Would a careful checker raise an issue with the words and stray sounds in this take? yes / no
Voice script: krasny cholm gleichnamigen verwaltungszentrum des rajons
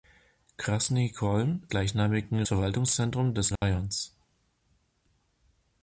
yes